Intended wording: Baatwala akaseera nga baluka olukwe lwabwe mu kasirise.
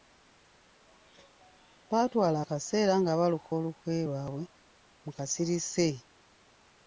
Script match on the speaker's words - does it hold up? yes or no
yes